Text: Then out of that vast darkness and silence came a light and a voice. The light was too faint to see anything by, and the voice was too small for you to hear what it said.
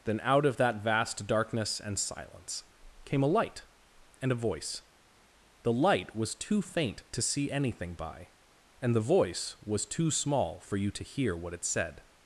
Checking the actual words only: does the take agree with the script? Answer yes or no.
yes